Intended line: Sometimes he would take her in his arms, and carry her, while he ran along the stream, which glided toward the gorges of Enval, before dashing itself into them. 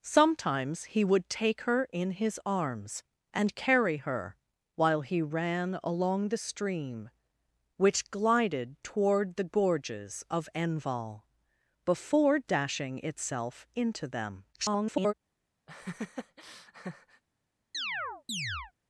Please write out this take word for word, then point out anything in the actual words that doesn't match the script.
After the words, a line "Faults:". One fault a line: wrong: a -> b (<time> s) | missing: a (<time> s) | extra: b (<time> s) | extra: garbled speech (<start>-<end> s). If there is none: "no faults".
Sometimes he would take her in his arms, and carry her, while he ran along the stream, which glided toward the gorges of Enval, before dashing itself into them. [garbled]
Faults:
extra: garbled speech (14.5-15.1 s)